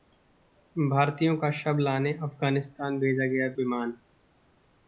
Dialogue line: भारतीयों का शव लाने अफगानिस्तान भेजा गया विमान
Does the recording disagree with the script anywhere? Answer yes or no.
no